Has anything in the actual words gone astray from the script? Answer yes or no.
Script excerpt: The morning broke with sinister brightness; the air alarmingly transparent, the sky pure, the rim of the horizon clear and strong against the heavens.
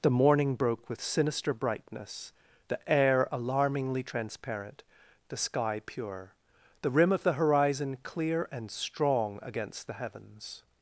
no